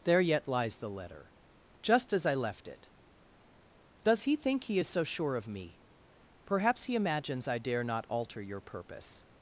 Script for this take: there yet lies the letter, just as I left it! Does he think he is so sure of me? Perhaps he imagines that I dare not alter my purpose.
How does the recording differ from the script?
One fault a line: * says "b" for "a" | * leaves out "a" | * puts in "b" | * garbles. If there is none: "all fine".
* leaves out "that"
* says "your" for "my"